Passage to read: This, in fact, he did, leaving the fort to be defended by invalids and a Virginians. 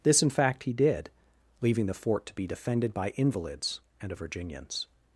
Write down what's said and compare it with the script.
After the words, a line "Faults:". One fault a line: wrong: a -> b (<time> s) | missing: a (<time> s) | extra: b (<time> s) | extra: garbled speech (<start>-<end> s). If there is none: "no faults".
This, in fact, he did, leaving the fort to be defended by invalids and a Virginians.
Faults:
no faults